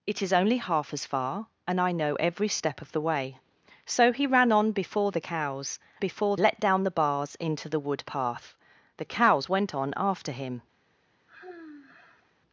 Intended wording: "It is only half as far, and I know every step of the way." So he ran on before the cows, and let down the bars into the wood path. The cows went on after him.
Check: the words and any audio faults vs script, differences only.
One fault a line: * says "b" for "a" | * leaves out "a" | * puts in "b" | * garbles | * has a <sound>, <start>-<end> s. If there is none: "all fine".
* says "before" for "and"
* has a sigh, 11.3-12.3 s